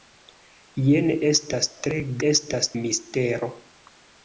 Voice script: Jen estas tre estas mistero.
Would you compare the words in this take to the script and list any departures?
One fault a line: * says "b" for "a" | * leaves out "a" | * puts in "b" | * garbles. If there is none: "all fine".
all fine